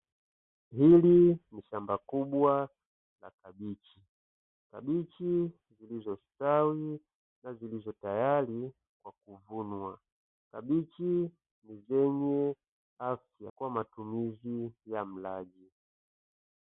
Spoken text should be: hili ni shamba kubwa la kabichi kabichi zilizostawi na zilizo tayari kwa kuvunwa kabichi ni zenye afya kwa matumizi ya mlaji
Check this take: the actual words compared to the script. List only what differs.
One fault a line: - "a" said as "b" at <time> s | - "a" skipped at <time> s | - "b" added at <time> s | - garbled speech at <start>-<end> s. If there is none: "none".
none